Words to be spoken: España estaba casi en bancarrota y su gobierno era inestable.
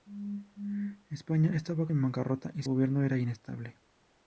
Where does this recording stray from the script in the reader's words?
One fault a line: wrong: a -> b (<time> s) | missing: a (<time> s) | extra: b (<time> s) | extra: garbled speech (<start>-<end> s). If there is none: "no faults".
missing: casi (1.9 s)
missing: su (2.6 s)